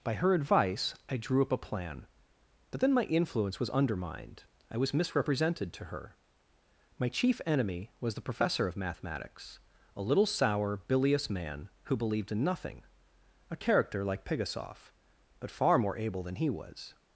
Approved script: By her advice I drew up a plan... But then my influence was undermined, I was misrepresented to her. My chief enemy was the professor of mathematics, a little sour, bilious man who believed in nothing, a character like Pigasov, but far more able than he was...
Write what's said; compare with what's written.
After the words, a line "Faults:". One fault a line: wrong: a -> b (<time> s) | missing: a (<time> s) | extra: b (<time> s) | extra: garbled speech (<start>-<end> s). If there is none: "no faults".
By her advice I drew up a plan... But then my influence was undermined, I was misrepresented to her. My chief enemy was the professor of mathematics, a little sour, bilious man who believed in nothing, a character like Pigasov, but far more able than he was...
Faults:
no faults